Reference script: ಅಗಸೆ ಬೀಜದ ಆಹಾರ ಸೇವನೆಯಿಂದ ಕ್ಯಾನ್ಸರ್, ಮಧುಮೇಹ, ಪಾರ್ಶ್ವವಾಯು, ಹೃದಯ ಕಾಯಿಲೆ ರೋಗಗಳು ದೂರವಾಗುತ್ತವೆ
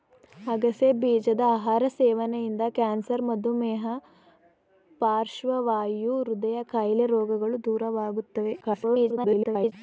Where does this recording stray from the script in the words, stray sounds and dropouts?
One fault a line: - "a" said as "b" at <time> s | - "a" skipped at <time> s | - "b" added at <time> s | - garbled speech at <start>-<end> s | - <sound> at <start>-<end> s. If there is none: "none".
- garbled speech at 8.6-9.7 s